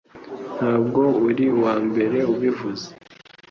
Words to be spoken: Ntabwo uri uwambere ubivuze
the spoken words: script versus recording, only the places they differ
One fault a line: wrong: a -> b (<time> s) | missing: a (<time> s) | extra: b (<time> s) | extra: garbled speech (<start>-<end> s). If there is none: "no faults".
no faults